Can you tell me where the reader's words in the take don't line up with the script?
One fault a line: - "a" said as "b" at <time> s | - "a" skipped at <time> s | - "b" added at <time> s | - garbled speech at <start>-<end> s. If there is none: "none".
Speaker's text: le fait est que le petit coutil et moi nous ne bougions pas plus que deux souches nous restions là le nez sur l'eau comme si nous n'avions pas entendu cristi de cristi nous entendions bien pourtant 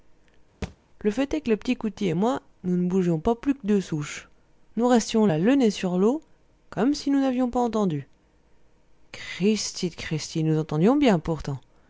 none